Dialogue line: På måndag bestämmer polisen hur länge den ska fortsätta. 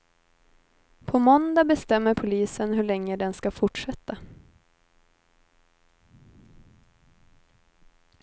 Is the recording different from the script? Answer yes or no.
no